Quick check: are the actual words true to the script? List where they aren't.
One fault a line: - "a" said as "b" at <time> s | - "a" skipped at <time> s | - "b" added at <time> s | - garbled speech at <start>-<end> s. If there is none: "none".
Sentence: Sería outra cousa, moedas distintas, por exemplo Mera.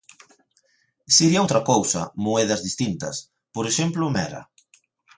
none